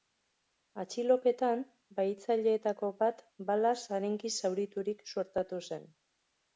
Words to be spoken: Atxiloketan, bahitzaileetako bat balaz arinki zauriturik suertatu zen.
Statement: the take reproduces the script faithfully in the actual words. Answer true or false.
true